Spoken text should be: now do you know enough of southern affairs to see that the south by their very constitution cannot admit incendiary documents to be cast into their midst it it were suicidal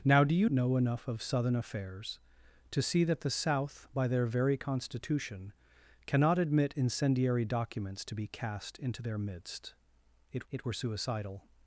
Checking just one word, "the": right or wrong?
right